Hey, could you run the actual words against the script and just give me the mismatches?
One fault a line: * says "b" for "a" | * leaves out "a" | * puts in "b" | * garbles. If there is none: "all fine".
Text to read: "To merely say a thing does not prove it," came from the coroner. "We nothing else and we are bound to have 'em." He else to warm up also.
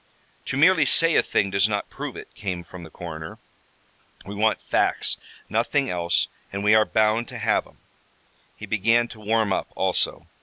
* puts in "want facts"
* says "began" for "else"